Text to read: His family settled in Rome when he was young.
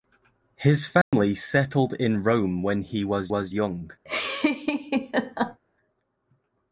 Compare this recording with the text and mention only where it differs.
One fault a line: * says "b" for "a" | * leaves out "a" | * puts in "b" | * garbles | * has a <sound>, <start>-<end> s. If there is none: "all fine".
* has a dropout, 1.0-1.1 s
* puts in "was"
* has a laugh, 4.0-5.6 s